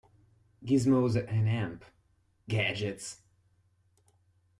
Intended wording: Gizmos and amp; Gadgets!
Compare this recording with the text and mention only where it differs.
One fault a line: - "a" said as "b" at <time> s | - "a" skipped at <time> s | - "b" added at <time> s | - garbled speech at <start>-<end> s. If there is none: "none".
none